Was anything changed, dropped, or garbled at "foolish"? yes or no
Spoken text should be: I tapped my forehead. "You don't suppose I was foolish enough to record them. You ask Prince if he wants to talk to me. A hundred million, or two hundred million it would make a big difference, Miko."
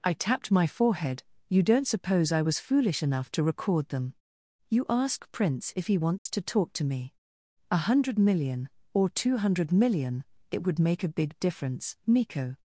no